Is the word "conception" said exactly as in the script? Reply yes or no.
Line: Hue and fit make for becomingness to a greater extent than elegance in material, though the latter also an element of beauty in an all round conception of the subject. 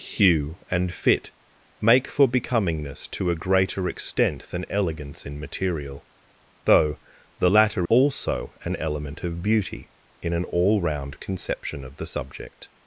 yes